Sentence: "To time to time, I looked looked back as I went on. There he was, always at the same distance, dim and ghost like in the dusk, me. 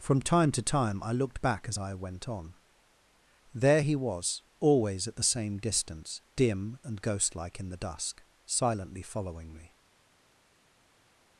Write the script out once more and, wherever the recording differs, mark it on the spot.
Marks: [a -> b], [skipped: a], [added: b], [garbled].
["To -> From] time to time, I looked [skipped: looked] back as I went on. There he was, always at the same distance, dim and ghost like in the dusk, [added: silently following] me.